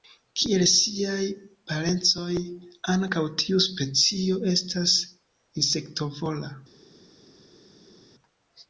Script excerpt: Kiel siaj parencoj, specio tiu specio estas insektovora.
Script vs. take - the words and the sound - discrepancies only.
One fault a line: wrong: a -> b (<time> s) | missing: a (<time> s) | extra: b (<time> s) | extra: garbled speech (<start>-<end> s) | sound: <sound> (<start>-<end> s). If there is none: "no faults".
wrong: specio -> ankaŭ (2.9 s)